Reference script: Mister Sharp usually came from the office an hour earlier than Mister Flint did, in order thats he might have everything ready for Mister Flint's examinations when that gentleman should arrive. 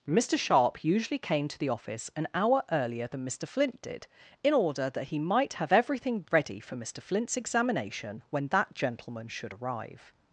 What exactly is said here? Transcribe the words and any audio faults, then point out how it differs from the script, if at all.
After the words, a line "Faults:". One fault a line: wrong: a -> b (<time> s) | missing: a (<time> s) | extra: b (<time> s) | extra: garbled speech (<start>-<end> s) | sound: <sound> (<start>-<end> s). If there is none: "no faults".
Mister Sharp usually came to the office an hour earlier than Mister Flint did, in order that he might have everything ready for Mister Flint's examination when that gentleman should arrive.
Faults:
wrong: from -> to (1.5 s)
wrong: thats -> that (4.9 s)
wrong: examinations -> examination (7.4 s)